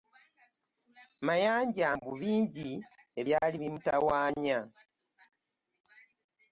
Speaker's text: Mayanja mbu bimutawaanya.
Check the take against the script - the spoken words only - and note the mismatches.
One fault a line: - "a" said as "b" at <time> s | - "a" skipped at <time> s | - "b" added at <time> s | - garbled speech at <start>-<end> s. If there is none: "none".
- "bingi ebyali" added at 2.2 s